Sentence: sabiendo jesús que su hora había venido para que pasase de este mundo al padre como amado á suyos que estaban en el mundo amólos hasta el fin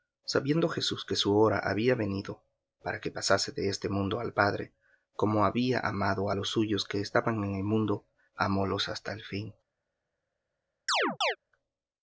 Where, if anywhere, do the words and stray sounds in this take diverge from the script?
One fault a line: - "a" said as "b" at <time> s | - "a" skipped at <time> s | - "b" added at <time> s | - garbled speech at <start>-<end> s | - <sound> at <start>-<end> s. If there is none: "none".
- "había" added at 5.5 s
- "los" added at 6.3 s
- chirp at 10.9-11.4 s